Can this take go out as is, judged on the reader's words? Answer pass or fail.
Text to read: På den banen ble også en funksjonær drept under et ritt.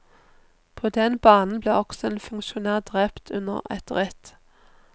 pass